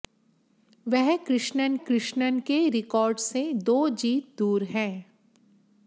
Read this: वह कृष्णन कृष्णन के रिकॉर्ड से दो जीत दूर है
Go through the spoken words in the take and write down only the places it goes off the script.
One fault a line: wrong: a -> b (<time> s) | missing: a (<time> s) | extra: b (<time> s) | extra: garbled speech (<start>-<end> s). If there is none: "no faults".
no faults